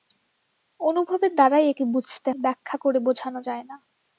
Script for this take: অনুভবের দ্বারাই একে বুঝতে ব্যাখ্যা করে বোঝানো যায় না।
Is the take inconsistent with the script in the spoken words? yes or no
no